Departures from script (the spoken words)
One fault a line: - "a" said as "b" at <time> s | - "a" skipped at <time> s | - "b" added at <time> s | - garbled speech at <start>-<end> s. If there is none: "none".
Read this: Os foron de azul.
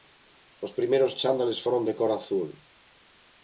- "primeiros chándales" added at 0.8 s
- "cor" added at 2.0 s